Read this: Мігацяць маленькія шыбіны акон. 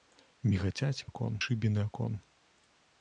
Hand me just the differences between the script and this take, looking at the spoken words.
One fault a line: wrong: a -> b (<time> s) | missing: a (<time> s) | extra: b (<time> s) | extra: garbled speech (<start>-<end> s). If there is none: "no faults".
wrong: маленькія -> акон (1.1 s)